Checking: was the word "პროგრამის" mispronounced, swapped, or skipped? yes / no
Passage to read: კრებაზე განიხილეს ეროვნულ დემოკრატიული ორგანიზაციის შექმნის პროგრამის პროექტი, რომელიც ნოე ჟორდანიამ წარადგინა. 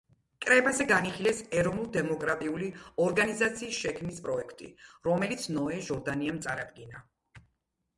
yes